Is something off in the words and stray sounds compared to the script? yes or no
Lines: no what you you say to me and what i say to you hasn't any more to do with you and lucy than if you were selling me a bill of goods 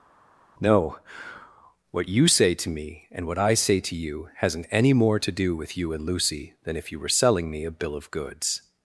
yes